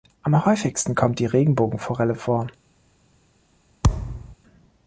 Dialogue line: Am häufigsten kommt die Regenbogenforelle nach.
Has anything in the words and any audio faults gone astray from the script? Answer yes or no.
yes